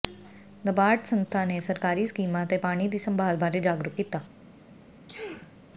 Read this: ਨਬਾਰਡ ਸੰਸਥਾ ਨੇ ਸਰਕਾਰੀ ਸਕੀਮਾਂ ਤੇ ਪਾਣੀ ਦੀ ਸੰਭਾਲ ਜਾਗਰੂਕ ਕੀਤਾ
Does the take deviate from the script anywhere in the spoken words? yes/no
yes